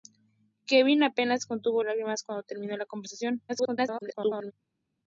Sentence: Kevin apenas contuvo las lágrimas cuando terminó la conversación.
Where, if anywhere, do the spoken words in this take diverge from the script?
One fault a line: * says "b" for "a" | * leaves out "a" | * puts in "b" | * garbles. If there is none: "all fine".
* leaves out "las"
* garbles